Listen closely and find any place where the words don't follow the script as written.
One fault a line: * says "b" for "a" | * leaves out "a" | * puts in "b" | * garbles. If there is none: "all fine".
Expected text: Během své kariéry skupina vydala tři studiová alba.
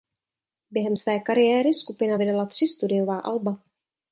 all fine